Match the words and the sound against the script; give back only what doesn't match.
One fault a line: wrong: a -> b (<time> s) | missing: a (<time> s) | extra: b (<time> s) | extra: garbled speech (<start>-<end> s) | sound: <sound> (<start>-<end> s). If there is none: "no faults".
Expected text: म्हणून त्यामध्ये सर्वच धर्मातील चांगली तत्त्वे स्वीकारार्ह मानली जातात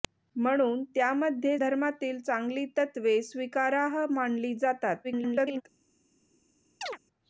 missing: सर्वच (1.6 s)
extra: garbled speech (5.0-5.6 s)
sound: chirp (6.8-7.0 s)